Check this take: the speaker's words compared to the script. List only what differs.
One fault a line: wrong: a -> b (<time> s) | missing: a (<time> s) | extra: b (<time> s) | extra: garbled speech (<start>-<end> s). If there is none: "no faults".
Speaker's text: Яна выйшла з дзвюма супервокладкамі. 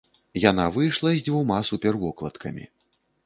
no faults